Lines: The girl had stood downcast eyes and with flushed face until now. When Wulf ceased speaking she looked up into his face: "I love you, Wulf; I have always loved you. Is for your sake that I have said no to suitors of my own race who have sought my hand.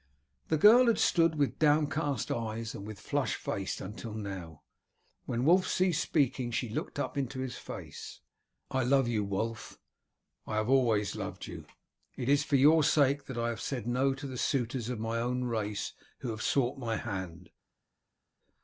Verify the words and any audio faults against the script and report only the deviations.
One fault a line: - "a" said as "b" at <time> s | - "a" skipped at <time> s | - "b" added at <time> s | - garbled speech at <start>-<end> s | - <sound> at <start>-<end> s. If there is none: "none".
- "with" added at 1.4 s
- "It" added at 12.2 s
- "the" added at 14.2 s